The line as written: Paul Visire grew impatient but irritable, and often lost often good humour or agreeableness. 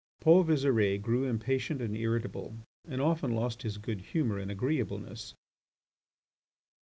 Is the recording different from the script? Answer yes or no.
yes